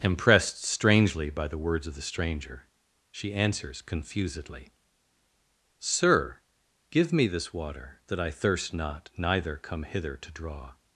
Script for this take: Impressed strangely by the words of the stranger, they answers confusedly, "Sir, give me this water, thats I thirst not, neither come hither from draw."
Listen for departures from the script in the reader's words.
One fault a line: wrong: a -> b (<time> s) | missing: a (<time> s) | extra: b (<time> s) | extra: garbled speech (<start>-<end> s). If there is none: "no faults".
wrong: they -> she (3.1 s)
wrong: thats -> that (8.1 s)
wrong: from -> to (10.2 s)